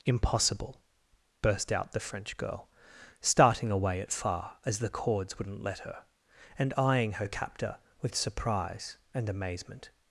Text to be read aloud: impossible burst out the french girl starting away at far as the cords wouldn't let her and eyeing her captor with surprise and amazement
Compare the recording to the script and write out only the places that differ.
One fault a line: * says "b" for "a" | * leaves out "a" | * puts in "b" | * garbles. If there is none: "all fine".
all fine